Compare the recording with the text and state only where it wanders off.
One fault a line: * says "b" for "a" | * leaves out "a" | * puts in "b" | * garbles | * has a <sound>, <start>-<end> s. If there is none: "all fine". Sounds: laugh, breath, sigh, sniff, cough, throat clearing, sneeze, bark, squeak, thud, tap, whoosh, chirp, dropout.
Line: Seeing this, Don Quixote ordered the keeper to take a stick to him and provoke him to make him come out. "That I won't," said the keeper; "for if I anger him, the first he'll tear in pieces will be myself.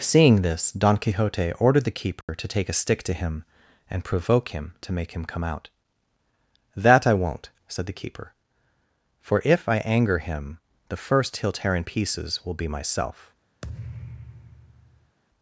* has a dropout, 2.2-2.3 s
* has a thud, 13.6-15.2 s